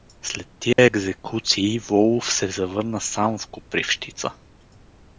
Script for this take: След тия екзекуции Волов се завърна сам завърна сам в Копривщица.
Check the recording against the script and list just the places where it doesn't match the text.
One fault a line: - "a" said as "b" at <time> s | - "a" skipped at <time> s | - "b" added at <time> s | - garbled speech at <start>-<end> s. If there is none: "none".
- "завърна сам" skipped at 3.4 s